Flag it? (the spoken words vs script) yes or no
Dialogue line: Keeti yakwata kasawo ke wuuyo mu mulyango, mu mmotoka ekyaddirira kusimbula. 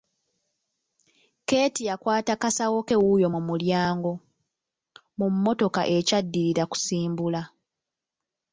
no